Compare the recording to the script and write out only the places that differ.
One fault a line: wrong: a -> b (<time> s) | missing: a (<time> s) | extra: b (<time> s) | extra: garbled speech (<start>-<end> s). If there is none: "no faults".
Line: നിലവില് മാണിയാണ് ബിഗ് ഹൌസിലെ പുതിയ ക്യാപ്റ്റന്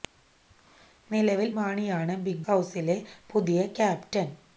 no faults